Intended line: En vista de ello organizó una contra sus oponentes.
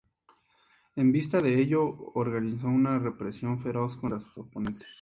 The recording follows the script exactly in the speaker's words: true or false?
false